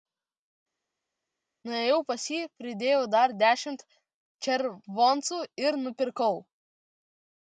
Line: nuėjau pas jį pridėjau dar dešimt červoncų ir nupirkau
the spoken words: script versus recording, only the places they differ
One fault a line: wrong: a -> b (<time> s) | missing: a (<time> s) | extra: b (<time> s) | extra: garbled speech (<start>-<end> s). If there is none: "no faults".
no faults